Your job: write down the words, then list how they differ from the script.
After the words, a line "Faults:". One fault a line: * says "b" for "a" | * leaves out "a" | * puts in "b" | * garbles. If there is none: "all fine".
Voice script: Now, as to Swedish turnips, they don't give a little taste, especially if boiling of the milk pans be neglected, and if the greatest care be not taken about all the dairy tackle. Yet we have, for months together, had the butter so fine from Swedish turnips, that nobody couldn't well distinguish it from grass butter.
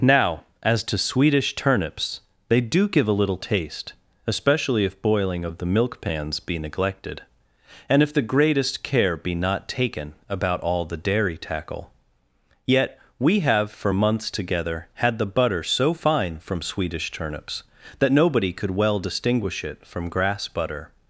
Now, as to Swedish turnips, they do give a little taste, especially if boiling of the milk pans be neglected, and if the greatest care be not taken about all the dairy tackle. Yet we have, for months together, had the butter so fine from Swedish turnips, that nobody could well distinguish it from grass butter.
Faults:
* says "do" for "don't"
* says "could" for "couldn't"